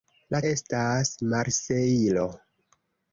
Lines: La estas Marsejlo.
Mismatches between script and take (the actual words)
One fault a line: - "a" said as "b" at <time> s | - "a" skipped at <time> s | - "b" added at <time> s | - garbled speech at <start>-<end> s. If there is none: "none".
none